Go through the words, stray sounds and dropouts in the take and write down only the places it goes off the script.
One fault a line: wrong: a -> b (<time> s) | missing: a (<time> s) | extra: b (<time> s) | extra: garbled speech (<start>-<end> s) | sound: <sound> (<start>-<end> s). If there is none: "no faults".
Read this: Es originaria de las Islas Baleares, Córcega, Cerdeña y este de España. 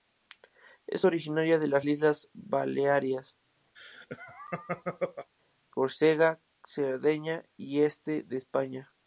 sound: laugh (3.7-5.3 s)